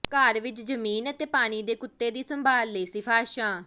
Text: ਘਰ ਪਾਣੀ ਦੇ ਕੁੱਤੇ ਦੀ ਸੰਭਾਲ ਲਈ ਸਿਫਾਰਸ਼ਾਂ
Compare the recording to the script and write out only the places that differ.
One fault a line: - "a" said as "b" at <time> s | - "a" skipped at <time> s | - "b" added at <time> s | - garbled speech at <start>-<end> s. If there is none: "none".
- "ਵਿਚ ਜ਼ਮੀਨ ਅਤੇ" added at 0.4 s